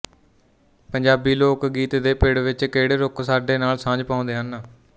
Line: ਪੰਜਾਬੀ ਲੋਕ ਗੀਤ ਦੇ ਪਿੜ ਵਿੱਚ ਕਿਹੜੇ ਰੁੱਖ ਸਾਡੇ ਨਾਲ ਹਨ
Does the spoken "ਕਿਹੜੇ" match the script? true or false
true